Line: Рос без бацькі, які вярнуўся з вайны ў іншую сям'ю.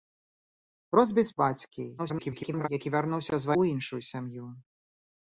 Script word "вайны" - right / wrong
wrong